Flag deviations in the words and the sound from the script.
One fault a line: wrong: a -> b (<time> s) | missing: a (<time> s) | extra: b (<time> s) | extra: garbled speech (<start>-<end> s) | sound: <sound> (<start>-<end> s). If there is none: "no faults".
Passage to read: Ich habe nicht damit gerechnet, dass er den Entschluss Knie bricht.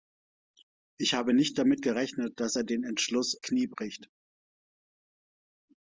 no faults